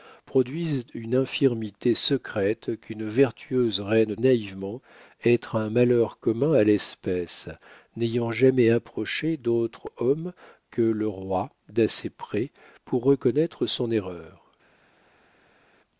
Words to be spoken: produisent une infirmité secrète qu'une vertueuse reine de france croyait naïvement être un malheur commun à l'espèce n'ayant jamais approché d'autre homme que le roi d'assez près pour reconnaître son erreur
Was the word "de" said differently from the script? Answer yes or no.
yes